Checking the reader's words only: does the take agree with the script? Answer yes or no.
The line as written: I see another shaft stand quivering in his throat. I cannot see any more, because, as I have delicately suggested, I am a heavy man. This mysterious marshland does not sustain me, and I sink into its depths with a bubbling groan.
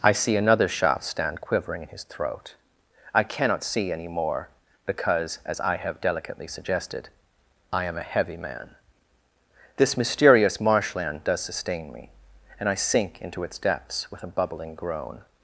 no